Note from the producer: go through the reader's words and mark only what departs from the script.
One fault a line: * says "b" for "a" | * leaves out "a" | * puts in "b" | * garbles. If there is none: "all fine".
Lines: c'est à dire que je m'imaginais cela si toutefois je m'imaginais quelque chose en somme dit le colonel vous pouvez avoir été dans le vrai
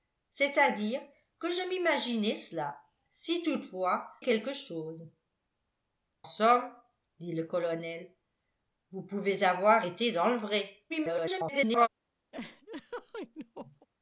* leaves out "je m'imaginais"
* leaves out "en"
* garbles